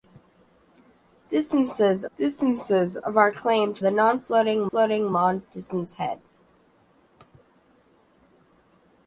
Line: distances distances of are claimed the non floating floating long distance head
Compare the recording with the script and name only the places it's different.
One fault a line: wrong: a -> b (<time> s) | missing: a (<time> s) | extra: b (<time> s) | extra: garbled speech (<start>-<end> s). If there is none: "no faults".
no faults